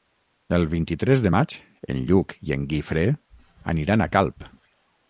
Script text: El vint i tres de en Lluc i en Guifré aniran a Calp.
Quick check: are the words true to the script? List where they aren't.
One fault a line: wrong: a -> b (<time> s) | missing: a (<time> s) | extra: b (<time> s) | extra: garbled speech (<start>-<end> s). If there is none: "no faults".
extra: maig (1.4 s)